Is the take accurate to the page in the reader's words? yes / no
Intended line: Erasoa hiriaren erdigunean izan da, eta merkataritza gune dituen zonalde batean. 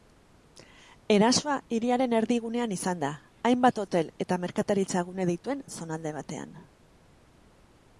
no